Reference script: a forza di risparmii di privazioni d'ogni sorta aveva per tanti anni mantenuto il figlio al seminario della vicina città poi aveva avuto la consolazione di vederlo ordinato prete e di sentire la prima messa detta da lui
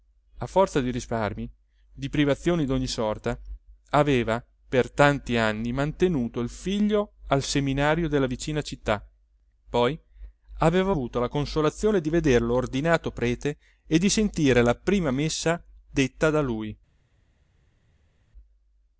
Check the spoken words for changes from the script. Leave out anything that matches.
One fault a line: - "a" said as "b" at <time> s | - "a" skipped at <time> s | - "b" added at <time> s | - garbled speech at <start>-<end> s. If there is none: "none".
none